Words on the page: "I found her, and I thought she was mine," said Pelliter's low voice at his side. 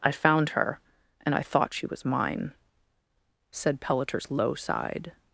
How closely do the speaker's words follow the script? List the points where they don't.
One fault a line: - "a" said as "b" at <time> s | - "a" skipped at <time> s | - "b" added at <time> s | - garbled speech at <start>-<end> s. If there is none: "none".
- "voice at his" skipped at 4.5 s